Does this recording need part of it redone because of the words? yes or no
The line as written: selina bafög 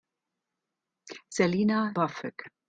no